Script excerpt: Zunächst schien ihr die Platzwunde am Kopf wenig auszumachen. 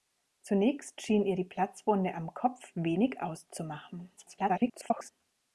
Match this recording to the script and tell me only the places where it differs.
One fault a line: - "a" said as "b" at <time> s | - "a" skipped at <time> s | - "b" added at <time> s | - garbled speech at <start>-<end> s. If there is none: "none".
- garbled speech at 4.2-5.1 s